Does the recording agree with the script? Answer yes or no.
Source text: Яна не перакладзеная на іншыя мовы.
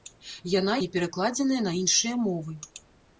yes